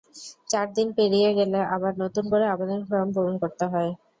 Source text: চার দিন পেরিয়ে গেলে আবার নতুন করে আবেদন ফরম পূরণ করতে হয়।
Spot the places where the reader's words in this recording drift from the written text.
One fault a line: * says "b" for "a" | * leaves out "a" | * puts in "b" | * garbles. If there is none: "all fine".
all fine